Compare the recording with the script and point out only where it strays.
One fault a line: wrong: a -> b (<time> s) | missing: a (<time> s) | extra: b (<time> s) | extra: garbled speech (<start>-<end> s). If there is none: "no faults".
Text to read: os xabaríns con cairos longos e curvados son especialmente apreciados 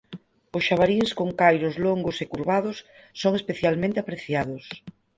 no faults